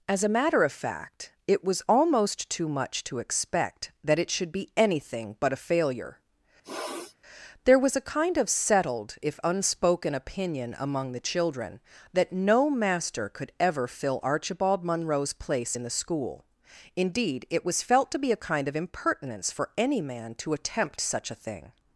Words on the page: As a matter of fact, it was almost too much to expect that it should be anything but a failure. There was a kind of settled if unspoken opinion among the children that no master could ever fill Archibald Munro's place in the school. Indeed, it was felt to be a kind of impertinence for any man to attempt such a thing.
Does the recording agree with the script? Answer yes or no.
yes